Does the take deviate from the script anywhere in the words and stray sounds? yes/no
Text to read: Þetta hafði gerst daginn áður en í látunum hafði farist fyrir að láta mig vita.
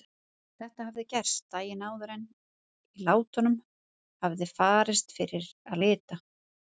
yes